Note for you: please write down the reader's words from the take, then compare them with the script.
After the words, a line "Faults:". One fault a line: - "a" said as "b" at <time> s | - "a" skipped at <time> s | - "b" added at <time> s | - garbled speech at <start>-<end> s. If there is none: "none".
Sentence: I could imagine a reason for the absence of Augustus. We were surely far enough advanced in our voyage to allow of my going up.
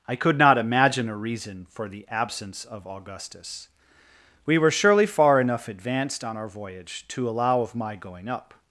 I could not imagine a reason for the absence of Augustus. We were surely far enough advanced on our voyage to allow of my going up.
Faults:
- "not" added at 0.4 s
- "in" said as "on" at 6.2 s